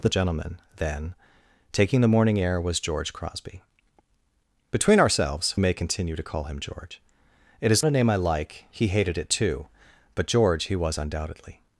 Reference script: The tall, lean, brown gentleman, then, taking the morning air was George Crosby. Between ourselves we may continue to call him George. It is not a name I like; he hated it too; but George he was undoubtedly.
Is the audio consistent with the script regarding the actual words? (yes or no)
no